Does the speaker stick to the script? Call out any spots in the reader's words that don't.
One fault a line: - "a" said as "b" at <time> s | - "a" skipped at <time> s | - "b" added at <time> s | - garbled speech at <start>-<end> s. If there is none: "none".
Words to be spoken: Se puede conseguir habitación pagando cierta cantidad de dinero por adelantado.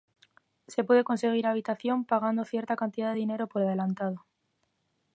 none